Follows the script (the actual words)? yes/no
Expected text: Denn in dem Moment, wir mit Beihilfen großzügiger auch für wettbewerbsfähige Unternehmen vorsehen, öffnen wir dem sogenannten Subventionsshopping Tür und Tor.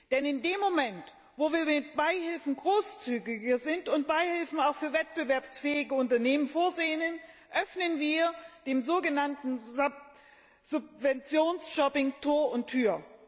no